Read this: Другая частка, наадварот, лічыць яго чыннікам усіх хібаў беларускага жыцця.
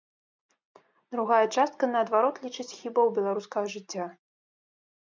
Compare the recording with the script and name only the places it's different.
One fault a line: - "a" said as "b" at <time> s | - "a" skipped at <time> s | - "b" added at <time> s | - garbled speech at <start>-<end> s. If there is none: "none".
- "яго чыннікам усіх" skipped at 2.6 s